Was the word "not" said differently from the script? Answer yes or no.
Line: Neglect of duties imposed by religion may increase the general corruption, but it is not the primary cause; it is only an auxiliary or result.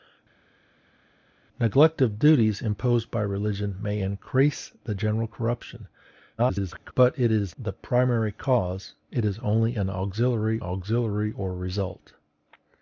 yes